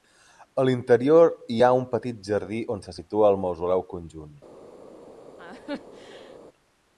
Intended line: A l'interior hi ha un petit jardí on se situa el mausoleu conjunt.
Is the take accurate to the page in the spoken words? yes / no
yes